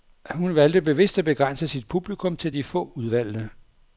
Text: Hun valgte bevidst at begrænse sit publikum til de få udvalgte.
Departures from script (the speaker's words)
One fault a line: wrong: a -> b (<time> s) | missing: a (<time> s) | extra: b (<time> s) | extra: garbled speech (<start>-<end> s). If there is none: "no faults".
no faults